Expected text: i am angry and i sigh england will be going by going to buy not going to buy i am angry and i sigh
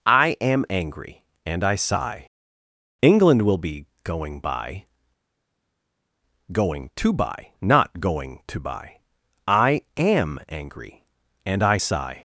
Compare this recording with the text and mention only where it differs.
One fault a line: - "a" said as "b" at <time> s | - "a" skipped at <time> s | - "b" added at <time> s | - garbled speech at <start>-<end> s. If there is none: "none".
none